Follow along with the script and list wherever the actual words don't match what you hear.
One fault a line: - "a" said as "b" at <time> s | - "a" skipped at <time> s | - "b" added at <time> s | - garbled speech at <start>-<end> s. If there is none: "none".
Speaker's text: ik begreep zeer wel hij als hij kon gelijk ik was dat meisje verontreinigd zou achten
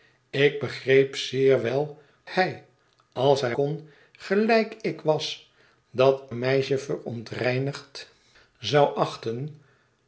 none